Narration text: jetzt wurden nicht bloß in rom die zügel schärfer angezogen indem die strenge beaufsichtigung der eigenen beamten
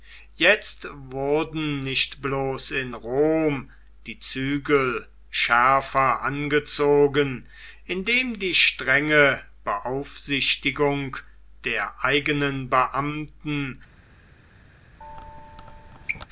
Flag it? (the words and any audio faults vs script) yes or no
yes